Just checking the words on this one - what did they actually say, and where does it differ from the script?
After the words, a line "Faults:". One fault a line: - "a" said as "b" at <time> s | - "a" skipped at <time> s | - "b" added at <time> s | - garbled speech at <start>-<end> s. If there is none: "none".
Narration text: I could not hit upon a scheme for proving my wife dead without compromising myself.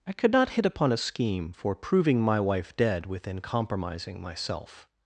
I could not hit upon a scheme for proving my wife dead within compromising myself.
Faults:
- "without" said as "within" at 3.0 s